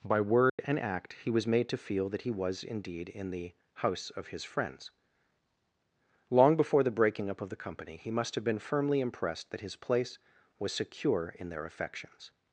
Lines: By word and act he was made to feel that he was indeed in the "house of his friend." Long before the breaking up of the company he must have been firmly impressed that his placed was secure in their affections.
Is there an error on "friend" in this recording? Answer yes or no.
yes